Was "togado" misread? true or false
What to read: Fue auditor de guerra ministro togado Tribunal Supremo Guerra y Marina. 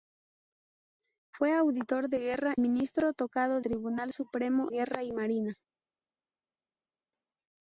false